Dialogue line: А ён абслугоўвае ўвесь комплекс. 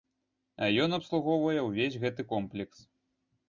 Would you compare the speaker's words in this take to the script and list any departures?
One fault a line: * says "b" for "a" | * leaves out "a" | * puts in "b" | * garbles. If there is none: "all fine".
* puts in "гэты"